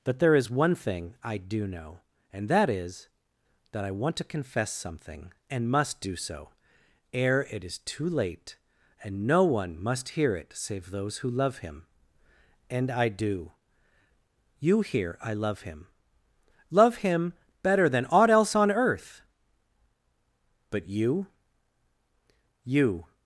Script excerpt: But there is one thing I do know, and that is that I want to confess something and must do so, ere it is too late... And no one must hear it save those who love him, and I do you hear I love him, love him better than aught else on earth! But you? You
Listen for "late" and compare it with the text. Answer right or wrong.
right